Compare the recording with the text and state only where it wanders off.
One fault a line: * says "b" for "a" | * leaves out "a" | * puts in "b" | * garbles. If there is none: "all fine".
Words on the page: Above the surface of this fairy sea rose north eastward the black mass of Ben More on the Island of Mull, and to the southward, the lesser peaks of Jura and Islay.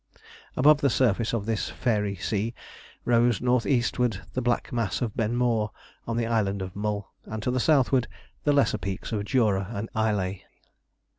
all fine